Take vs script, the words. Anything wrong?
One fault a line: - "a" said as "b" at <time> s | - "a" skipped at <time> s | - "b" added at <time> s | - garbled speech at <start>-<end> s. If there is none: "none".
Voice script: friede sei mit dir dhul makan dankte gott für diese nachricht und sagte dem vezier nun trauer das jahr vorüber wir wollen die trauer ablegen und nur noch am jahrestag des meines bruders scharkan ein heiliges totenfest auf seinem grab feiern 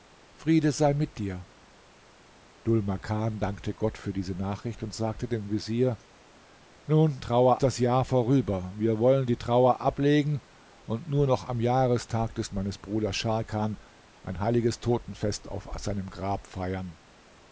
none